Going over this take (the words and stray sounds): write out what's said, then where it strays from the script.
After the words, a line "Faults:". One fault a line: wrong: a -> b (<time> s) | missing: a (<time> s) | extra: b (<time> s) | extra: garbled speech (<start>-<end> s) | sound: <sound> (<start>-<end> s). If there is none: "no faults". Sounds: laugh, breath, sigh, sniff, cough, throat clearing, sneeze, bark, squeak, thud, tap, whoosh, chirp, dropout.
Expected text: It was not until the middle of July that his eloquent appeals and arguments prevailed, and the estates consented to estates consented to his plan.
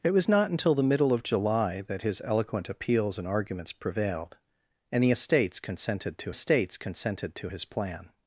It was not until the middle of July that his eloquent appeals and arguments prevailed, and the estates consented to estates consented to his plan.
Faults:
no faults